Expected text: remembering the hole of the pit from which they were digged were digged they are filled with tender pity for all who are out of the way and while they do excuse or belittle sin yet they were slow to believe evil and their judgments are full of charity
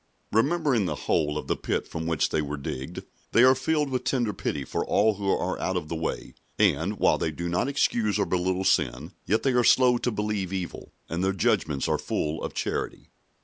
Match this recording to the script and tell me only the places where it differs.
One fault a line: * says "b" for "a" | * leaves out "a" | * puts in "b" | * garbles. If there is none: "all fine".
* leaves out "were digged"
* puts in "not"
* says "are" for "were"